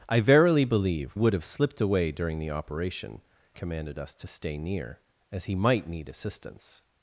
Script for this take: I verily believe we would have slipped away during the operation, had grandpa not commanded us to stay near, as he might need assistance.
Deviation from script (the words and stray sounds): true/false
true